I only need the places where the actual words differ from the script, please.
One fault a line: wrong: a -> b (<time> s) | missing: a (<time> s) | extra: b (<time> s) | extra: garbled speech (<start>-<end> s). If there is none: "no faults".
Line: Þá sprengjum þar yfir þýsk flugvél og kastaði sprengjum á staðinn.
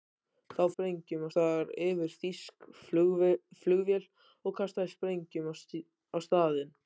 no faults